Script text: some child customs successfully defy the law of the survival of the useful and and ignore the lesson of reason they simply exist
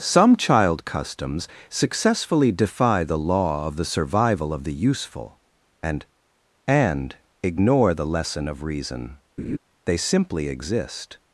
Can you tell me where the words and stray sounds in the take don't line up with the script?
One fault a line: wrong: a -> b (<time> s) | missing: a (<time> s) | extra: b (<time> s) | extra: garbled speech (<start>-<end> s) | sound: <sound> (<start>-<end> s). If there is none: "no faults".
sound: laugh (9.4-9.6 s)